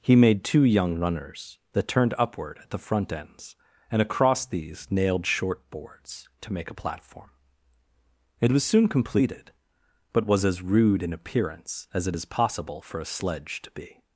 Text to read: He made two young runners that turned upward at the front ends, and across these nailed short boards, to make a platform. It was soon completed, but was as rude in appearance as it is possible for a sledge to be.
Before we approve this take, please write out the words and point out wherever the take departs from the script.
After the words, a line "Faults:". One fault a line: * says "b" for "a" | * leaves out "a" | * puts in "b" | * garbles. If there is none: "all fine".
He made two young runners that turned upward at the front ends, and across these nailed short boards, to make a platform. It was soon completed, but was as rude in appearance as it is possible for a sledge to be.
Faults:
all fine